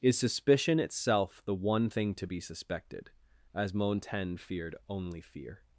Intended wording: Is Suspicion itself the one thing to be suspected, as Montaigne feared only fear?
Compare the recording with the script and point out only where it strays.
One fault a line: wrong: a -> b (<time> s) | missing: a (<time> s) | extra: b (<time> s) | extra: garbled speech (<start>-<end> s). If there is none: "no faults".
no faults